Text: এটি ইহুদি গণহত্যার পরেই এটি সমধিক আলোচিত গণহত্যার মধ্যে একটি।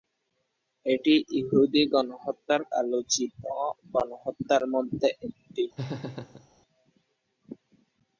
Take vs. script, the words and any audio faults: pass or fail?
fail